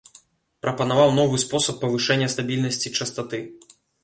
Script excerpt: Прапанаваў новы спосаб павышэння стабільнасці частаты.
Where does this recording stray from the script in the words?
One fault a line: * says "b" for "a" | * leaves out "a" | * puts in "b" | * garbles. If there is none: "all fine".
all fine